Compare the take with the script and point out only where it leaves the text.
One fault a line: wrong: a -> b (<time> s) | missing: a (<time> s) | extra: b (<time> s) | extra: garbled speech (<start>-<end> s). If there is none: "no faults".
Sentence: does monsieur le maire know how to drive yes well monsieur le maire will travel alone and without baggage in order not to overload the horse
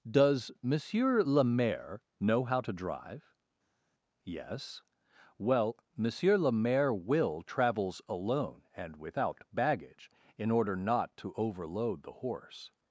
wrong: travel -> travels (7.4 s)